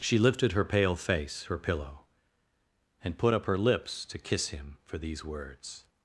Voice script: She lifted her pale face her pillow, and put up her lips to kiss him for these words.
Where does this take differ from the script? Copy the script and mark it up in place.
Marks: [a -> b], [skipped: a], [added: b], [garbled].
She lifted her pale face her pillow, and put up her lips to kiss him for these words.